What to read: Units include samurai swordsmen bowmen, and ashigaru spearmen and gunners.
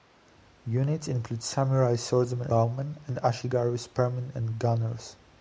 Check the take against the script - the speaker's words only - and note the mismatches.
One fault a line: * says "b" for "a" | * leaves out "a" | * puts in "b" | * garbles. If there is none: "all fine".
all fine